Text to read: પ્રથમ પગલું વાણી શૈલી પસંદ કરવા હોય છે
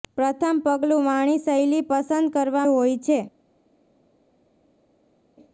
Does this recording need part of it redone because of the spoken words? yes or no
no